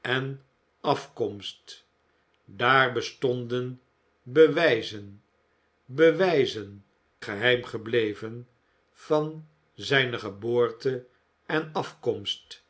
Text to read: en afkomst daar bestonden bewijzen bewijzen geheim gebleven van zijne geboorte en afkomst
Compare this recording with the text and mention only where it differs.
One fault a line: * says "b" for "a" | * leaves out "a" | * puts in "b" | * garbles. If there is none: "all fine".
all fine